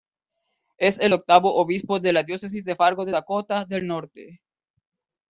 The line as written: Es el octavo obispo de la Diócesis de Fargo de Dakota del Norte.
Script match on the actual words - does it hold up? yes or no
yes